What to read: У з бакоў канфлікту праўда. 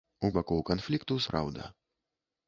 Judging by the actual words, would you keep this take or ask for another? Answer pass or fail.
pass